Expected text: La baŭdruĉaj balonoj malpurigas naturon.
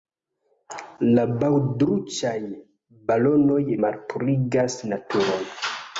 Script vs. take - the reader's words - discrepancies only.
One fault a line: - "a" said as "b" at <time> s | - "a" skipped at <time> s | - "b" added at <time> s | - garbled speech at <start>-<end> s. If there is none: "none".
none